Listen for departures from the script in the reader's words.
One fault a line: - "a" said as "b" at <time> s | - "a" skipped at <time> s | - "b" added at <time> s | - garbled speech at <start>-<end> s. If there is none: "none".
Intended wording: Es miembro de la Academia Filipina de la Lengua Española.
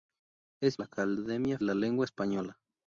- "miembro de" skipped at 0.8 s
- "Filipina de" skipped at 1.6 s